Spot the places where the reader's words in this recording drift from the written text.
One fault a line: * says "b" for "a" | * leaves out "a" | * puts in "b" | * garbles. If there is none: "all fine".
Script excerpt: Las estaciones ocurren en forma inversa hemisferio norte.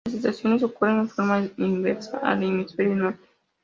* puts in "al"